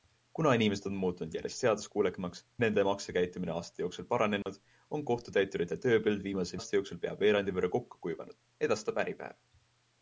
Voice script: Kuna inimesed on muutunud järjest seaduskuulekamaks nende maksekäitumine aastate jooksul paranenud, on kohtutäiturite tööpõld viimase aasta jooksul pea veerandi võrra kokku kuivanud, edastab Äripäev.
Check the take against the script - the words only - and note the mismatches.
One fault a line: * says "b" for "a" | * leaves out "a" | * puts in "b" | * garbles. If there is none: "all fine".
all fine